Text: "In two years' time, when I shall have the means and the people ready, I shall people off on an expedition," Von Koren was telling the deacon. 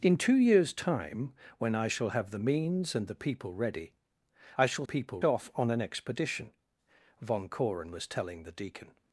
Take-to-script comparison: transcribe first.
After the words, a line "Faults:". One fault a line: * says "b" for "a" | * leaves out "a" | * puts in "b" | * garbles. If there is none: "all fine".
"In two years' time, when I shall have the means and the people ready, I shall people off on an expedition," Von Koren was telling the deacon.
Faults:
all fine